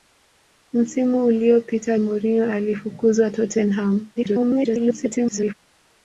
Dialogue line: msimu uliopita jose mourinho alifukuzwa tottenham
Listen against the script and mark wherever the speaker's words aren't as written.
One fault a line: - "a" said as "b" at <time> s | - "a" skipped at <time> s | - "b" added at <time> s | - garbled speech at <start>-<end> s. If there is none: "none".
- "jose" skipped at 2.0 s
- garbled speech at 4.1-5.5 s